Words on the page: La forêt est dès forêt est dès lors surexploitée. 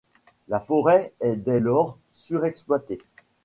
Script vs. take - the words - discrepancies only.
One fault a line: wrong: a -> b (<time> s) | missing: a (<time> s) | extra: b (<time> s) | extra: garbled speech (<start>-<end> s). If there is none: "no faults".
missing: forêt est dès (1.6 s)